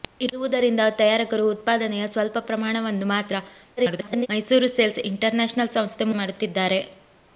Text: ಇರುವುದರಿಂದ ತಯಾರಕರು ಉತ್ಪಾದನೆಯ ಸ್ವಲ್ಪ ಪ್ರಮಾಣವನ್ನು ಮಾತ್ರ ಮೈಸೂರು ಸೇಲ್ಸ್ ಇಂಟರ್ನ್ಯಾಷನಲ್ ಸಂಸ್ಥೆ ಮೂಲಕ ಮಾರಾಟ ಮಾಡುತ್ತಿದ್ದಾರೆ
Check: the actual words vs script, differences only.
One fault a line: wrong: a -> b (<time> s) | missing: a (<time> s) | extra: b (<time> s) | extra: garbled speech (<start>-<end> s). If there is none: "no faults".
extra: garbled speech (3.8-4.3 s)
missing: ಮೂಲಕ ಮಾರಾಟ (6.1 s)